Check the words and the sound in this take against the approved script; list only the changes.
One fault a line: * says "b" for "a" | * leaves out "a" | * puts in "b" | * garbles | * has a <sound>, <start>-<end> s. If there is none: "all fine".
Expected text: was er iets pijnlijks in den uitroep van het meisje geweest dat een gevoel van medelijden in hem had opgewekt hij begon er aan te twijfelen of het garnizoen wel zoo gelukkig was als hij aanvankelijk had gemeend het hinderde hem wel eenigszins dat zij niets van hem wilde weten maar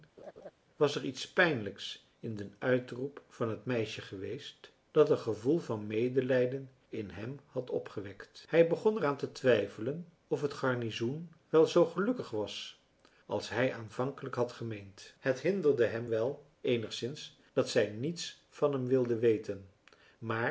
* has a laugh, 0.2-0.5 s